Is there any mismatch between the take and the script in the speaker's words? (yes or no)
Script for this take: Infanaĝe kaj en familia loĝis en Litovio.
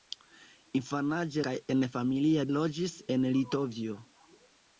no